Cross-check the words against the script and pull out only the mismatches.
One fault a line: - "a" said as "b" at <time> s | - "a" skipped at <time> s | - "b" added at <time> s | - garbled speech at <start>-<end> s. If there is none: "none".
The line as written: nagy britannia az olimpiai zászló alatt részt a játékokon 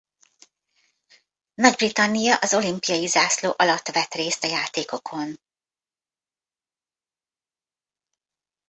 - "vett" added at 3.9 s